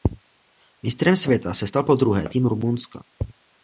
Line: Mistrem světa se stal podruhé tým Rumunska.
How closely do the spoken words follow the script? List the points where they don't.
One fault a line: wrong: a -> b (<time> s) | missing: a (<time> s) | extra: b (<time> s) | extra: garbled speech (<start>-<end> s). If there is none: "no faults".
no faults